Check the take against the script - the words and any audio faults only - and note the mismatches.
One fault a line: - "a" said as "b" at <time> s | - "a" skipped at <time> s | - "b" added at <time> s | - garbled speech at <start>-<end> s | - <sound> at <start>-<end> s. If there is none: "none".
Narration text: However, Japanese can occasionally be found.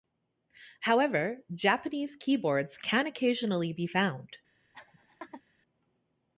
- "keyboards" added at 2.1 s
- laugh at 4.7-5.4 s